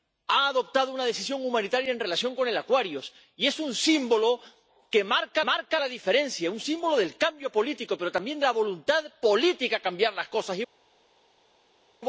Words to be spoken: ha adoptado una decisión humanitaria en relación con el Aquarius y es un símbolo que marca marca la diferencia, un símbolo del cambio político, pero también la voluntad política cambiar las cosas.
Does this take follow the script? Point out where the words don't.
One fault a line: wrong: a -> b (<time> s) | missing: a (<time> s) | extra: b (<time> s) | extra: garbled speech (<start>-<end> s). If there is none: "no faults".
no faults